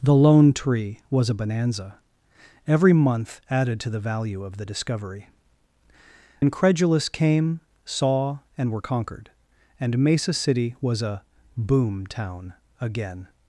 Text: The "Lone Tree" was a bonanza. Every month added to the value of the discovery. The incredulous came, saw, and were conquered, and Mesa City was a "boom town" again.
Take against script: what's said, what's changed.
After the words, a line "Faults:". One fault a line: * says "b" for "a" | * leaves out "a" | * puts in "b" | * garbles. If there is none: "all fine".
The "Lone Tree" was a bonanza. Every month added to the value of the discovery. Incredulous came, saw, and were conquered, and Mesa City was a "boom town" again.
Faults:
* leaves out "The"